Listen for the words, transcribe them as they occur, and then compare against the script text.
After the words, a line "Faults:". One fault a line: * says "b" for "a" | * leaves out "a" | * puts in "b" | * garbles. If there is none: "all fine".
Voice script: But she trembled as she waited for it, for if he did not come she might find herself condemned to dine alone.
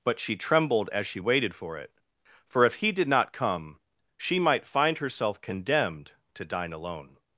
But she trembled as she waited for it, for if he did not come she might find herself condemned to dine alone.
Faults:
all fine